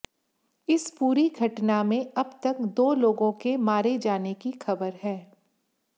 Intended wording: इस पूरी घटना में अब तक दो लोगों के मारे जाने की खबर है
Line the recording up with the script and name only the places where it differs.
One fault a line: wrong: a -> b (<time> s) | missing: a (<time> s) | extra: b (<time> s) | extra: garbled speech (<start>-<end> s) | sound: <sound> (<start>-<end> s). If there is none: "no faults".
no faults